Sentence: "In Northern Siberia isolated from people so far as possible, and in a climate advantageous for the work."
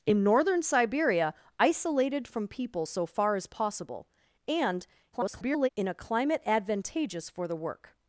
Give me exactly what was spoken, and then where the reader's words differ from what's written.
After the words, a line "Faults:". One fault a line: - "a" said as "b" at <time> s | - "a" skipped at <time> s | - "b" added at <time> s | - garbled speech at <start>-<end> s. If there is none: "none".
"In Northern Siberia isolated from people so far as possible, and [garbled] in a climate advantageous for the work."
Faults:
- garbled speech at 5.1-5.7 s